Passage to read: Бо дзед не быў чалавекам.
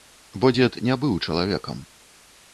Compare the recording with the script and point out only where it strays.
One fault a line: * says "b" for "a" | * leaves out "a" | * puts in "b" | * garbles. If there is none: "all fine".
all fine